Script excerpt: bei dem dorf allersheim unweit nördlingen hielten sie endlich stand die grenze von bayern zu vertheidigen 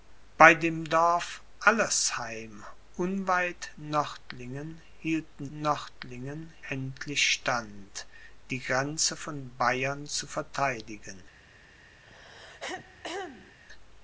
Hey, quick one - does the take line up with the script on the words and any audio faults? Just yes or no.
no